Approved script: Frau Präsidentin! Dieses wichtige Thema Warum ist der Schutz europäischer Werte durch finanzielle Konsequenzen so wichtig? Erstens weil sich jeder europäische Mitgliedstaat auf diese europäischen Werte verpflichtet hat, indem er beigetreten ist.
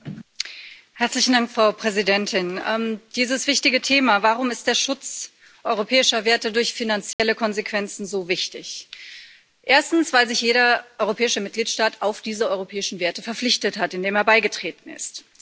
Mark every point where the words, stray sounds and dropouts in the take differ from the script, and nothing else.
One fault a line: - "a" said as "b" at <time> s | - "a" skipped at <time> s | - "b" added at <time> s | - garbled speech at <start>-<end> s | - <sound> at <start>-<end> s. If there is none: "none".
- dropout at 7.1-7.2 s